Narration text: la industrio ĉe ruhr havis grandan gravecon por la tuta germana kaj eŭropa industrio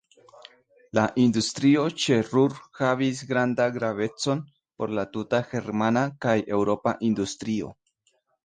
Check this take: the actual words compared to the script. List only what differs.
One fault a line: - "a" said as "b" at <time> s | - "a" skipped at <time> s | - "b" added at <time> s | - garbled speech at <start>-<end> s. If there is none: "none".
none